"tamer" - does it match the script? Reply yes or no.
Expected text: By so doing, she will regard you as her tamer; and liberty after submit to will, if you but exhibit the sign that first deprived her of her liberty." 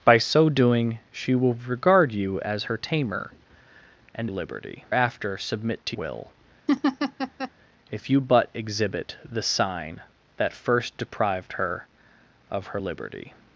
yes